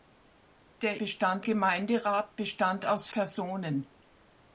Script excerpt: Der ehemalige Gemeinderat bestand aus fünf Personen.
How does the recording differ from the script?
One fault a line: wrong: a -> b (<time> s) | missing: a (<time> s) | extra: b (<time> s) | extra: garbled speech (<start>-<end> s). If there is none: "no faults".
wrong: ehemalige -> bestand (1.0 s)
missing: fünf (3.1 s)